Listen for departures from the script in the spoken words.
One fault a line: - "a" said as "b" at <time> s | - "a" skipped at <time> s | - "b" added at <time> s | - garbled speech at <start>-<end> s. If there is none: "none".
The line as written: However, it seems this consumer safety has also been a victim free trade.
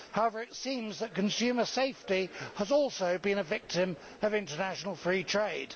- "this" said as "that" at 1.0 s
- "of international" added at 4.2 s